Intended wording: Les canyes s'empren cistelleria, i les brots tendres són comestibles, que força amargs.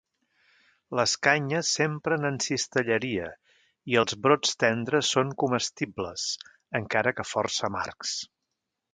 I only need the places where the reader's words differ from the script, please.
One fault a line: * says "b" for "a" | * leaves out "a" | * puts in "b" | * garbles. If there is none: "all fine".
* puts in "en"
* says "els" for "les"
* puts in "encara"